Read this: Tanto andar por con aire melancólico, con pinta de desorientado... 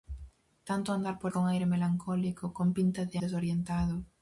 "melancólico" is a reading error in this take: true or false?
false